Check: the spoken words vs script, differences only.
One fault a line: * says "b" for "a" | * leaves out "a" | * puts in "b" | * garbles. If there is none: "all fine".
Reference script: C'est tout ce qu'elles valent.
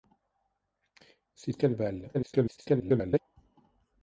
* leaves out "tout"
* garbles